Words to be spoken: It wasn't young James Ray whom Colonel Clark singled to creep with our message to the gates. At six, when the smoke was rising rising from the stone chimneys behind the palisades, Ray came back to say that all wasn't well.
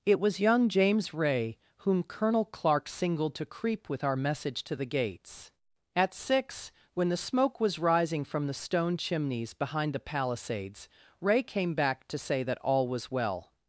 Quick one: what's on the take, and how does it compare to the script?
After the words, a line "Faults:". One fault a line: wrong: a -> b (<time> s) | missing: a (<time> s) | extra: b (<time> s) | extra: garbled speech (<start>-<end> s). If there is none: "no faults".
It was young James Ray whom Colonel Clark singled to creep with our message to the gates. At six, when the smoke was rising from the stone chimneys behind the palisades, Ray came back to say that all was well.
Faults:
wrong: wasn't -> was (0.2 s)
missing: rising (8.2 s)
wrong: wasn't -> was (12.9 s)